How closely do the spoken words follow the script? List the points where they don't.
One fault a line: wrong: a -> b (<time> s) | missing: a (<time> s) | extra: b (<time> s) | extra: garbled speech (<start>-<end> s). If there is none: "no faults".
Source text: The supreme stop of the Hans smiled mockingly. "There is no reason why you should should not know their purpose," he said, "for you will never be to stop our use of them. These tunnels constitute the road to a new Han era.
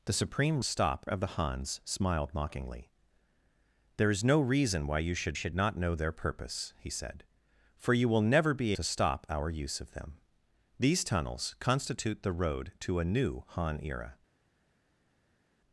no faults